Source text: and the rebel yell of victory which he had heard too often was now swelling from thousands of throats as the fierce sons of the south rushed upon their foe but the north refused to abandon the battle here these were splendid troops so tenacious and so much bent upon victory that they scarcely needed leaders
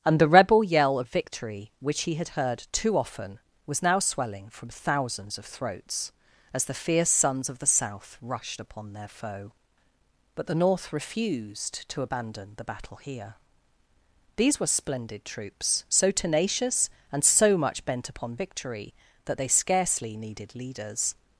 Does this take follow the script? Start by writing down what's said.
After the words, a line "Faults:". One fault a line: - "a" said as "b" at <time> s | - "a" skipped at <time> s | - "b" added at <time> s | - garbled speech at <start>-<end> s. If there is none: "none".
and the rebel yell of victory which he had heard too often was now swelling from thousands of throats as the fierce sons of the south rushed upon their foe but the north refused to abandon the battle here these were splendid troops so tenacious and so much bent upon victory that they scarcely needed leaders
Faults:
none